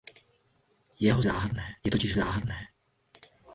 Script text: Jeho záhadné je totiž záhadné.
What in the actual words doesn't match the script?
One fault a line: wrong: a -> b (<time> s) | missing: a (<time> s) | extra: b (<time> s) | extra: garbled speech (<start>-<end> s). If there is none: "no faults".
no faults